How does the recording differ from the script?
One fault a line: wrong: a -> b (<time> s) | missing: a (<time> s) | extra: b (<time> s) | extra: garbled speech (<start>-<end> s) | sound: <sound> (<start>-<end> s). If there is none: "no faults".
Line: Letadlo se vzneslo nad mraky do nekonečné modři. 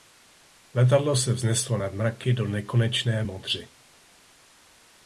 no faults